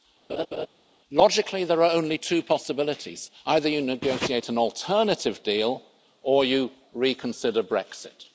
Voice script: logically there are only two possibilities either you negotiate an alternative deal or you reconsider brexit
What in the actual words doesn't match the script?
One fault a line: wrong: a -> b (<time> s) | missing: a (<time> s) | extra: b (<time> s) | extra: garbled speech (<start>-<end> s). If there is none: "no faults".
no faults